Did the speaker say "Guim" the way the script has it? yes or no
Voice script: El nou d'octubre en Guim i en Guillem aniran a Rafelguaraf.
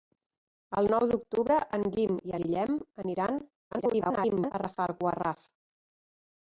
yes